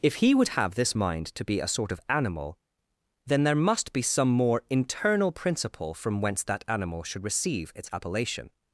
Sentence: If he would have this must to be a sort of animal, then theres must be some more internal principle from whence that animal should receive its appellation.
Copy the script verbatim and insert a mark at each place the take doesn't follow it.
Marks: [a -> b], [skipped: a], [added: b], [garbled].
If he would have this [must -> mind] to be a sort of animal, then [theres -> there] must be some more internal principle from whence that animal should receive its appellation.